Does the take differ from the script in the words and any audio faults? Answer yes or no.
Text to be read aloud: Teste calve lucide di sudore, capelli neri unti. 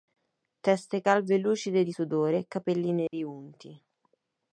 yes